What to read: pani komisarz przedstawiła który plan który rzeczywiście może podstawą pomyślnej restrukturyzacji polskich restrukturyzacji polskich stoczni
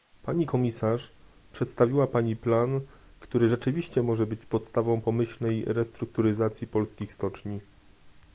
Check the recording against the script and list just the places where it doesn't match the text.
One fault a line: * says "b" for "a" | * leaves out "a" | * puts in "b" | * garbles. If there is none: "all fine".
* says "pani" for "który"
* puts in "być"
* leaves out "restrukturyzacji polskich"